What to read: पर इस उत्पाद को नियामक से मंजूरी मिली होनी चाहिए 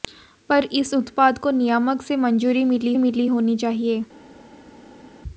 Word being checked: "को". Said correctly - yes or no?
yes